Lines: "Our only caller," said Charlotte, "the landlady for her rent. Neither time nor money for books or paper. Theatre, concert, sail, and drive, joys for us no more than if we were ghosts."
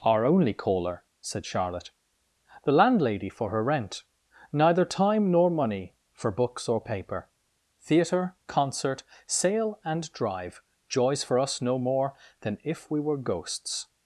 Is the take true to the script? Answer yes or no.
yes